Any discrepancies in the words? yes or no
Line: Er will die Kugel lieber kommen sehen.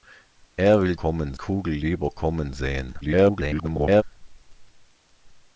yes